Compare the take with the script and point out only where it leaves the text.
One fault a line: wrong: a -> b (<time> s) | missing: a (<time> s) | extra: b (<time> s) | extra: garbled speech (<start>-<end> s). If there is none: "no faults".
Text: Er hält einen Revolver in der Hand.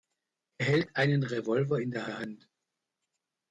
extra: der (2.0 s)